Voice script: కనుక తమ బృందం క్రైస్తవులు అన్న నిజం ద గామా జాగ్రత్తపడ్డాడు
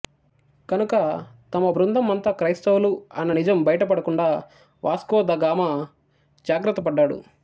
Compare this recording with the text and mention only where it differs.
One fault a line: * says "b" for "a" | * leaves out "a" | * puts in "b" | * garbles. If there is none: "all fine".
* puts in "అంతా"
* puts in "బయటపడకుండా వాస్కో"